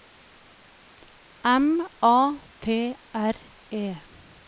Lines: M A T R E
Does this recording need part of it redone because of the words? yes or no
no